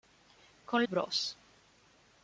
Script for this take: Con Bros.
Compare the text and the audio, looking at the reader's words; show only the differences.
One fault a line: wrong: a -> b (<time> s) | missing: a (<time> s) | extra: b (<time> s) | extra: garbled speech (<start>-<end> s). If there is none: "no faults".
no faults